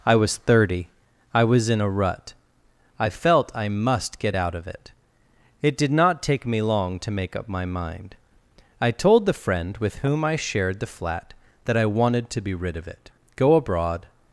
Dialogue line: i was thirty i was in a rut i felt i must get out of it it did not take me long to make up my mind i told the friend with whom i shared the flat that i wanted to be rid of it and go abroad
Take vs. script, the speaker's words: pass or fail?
fail